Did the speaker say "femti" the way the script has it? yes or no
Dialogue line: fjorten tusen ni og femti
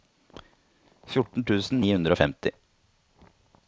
yes